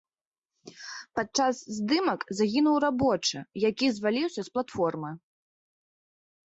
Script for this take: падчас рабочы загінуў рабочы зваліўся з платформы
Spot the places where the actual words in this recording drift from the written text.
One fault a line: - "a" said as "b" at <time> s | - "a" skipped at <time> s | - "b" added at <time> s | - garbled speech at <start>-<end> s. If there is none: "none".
- "рабочы" said as "здымак" at 1.8 s
- "які" added at 3.7 s